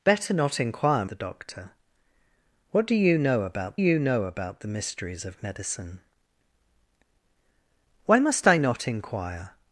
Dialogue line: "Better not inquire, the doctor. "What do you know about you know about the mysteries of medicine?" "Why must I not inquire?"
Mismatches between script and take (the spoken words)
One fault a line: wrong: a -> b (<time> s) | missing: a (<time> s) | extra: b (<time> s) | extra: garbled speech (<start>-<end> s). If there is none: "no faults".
no faults